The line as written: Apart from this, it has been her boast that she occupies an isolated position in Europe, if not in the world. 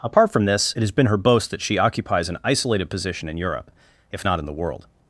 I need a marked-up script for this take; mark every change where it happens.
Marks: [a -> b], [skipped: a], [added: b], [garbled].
Apart from this, it has been her boast that she occupies an isolated position in Europe, if not in the world.